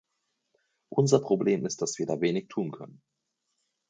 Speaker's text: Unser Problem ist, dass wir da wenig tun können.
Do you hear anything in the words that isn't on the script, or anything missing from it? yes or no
no